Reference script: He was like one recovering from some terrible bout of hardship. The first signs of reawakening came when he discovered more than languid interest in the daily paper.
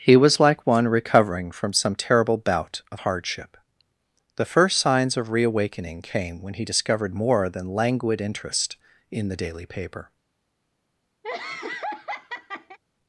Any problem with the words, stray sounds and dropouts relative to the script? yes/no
yes